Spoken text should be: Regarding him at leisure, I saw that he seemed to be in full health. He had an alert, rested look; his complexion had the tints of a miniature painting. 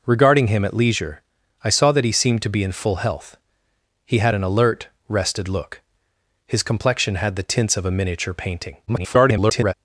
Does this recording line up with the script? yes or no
no